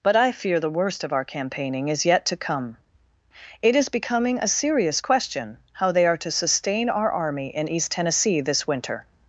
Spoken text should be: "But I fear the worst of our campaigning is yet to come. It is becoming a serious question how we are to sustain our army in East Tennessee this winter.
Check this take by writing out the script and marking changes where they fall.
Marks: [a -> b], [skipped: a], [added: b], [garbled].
"But I fear the worst of our campaigning is yet to come. It is becoming a serious question how [we -> they] are to sustain our army in East Tennessee this winter.